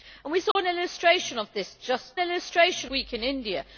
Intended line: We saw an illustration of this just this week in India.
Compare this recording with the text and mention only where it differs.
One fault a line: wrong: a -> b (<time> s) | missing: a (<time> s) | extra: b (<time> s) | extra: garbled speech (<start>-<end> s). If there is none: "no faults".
wrong: this -> illustration (2.2 s)